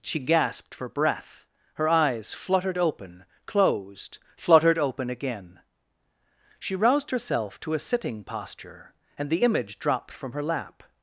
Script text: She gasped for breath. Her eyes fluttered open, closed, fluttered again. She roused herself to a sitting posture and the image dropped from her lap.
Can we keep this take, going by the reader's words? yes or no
no